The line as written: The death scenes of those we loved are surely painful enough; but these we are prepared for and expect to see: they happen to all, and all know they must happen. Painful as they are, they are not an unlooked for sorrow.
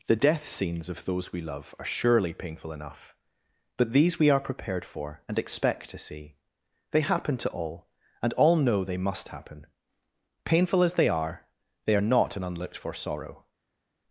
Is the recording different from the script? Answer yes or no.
yes